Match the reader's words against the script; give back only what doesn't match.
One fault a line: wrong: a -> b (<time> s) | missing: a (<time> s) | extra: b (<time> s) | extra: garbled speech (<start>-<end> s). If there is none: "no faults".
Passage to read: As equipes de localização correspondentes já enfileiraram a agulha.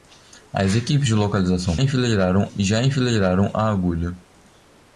wrong: correspondentes -> enfileiraram (1.8 s)